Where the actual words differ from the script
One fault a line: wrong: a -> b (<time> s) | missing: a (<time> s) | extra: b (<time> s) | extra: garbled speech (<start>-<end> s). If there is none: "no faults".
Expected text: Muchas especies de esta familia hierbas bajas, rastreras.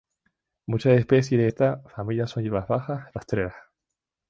extra: son (2.3 s)